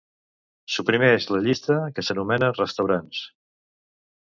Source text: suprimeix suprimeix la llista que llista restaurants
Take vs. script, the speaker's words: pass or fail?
fail